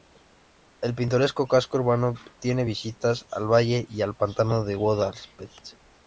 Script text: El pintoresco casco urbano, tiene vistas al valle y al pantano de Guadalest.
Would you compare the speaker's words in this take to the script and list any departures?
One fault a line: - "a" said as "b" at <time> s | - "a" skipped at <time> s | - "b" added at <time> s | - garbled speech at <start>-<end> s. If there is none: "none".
none